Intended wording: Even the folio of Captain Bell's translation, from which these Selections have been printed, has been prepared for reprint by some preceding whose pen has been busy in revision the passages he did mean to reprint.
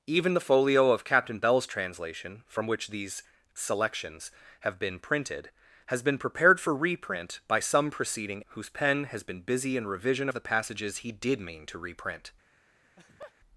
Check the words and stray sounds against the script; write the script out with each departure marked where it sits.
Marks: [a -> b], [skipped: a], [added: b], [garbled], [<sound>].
Even the folio of Captain Bell's translation, from which these Selections have been printed, has been prepared for reprint by some preceding whose pen has been busy in revision the passages he did mean to reprint. [laugh]